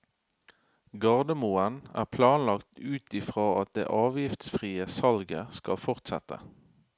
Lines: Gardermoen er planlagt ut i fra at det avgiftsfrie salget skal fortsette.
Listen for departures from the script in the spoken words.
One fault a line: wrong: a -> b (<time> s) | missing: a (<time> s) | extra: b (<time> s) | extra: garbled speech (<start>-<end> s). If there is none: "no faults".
no faults